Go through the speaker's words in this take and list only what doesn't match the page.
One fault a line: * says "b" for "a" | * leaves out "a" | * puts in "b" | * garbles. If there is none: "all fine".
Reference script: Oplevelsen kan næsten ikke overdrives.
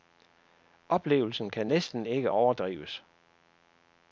all fine